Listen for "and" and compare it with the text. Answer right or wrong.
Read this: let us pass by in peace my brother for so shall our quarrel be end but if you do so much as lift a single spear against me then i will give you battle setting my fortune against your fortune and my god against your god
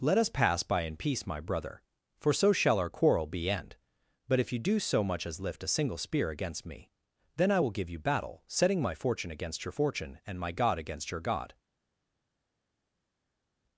right